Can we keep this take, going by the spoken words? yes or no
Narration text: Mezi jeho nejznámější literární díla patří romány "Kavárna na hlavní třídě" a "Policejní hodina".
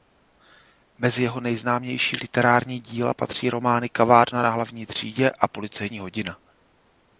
yes